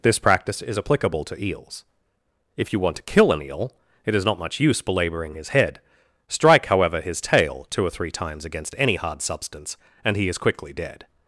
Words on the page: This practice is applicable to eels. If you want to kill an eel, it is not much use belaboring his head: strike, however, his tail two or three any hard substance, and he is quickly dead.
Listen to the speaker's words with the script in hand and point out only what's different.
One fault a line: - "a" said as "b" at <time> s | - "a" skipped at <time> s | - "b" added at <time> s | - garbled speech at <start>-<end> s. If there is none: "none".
- "times against" added at 8.1 s